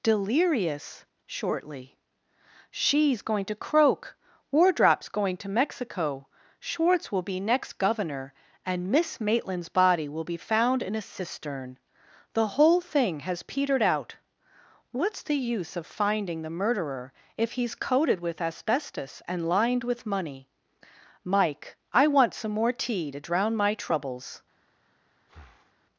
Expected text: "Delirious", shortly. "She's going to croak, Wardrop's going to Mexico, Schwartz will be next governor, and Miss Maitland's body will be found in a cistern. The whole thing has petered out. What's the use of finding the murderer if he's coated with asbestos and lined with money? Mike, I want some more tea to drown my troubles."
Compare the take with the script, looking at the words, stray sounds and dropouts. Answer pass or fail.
fail